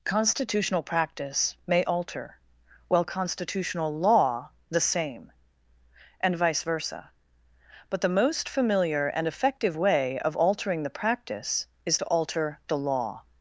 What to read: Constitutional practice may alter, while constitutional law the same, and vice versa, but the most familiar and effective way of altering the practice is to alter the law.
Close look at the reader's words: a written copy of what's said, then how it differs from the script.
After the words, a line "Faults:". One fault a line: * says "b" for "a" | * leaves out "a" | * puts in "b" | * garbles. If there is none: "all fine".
Constitutional practice may alter, while constitutional law the same, and vice versa, but the most familiar and effective way of altering the practice is to alter the law.
Faults:
all fine